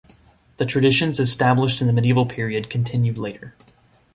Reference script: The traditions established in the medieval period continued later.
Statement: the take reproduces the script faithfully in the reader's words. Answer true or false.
true